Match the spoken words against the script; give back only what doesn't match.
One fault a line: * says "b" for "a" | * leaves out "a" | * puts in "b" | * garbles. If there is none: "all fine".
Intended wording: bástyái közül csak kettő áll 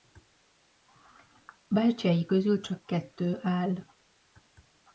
all fine